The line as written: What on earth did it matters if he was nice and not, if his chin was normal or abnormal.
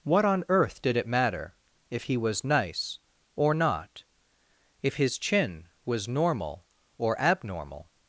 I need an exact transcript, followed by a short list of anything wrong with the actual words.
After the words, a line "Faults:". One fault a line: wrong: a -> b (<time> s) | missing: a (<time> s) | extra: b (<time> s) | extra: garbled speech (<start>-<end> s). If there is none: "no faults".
What on earth did it matter if he was nice or not, if his chin was normal or abnormal.
Faults:
wrong: matters -> matter (1.1 s)
wrong: and -> or (3.4 s)